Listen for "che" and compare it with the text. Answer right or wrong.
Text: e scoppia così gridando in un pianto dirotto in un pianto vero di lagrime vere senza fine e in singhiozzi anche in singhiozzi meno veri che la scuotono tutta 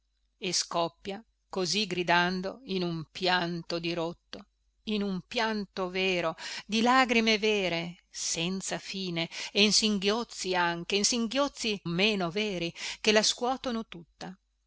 right